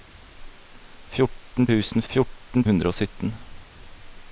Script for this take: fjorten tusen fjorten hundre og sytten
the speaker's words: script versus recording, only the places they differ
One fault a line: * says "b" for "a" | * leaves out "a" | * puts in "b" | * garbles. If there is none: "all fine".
all fine